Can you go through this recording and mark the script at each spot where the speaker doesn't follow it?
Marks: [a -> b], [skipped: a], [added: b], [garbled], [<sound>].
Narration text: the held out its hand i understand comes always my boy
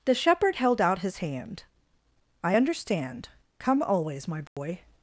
the [added: shepherd] held out [its -> his] hand i understand [comes -> come] always my boy [dropout]